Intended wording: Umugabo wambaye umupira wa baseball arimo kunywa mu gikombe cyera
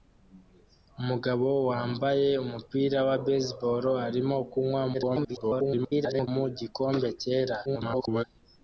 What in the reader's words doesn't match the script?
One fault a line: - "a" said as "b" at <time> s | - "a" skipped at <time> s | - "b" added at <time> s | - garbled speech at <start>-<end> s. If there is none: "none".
- garbled speech at 4.9-6.3 s
- garbled speech at 7.6-8.2 s